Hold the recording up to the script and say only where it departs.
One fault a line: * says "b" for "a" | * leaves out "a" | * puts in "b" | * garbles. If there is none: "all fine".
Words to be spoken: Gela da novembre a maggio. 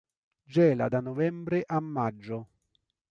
all fine